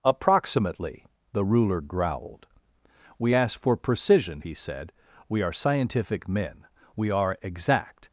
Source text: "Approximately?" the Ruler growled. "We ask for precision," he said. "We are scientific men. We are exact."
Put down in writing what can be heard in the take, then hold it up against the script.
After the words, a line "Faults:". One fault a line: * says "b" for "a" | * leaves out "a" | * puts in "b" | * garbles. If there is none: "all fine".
"Approximately?" the Ruler growled. "We ask for precision," he said. "We are scientific men. We are exact."
Faults:
all fine